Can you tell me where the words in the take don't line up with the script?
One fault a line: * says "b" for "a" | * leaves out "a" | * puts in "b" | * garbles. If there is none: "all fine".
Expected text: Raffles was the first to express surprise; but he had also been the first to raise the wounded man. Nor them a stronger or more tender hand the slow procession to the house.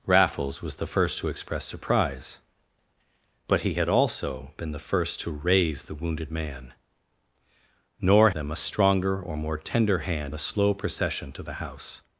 all fine